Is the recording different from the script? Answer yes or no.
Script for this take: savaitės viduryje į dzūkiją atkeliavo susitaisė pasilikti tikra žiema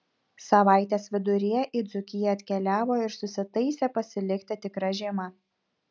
yes